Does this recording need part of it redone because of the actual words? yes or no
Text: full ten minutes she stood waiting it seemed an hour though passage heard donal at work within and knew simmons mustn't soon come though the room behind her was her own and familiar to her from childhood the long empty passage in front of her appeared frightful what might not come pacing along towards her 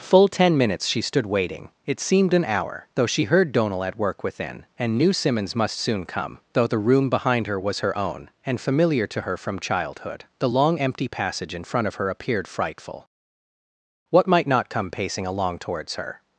yes